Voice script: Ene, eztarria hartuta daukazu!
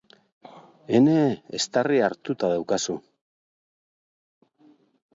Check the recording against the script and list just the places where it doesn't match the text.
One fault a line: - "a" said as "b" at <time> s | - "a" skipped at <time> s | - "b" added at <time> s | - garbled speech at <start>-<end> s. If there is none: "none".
none